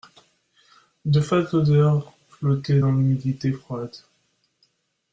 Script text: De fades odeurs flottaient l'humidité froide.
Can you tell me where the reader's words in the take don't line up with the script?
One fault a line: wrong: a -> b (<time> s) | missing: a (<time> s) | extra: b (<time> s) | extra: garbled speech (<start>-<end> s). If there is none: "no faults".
extra: dans (2.8 s)